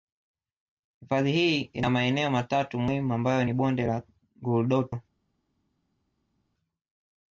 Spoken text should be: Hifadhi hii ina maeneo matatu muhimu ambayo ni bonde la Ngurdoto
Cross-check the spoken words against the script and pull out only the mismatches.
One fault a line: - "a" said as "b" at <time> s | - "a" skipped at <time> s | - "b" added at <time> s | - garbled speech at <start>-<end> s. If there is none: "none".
none